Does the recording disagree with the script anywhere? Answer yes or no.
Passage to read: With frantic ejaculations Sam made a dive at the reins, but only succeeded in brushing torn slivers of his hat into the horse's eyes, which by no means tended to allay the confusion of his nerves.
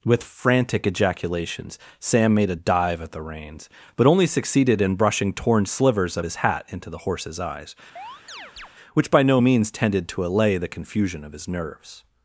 no